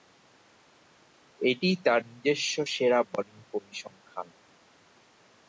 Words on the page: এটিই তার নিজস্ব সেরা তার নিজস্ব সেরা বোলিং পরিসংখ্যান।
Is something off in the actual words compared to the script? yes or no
yes